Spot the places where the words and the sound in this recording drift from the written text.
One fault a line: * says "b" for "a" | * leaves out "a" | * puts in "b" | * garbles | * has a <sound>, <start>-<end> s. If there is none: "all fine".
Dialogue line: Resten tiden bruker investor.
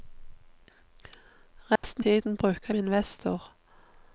* has a dropout, 1.8-1.8 s